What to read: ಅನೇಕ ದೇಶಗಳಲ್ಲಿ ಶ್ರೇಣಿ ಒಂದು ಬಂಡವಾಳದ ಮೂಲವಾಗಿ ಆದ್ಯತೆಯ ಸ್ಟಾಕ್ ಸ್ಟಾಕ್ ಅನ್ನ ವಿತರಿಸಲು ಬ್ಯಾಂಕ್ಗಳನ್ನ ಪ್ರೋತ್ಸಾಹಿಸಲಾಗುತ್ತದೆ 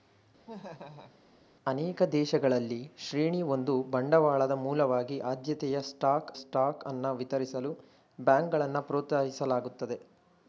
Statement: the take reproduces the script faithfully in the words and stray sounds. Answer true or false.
false